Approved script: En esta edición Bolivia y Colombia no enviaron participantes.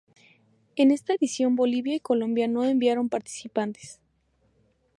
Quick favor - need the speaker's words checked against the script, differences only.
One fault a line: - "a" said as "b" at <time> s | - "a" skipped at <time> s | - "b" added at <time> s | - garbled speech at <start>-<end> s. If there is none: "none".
none